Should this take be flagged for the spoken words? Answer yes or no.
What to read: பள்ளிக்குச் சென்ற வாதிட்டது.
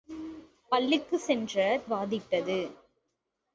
no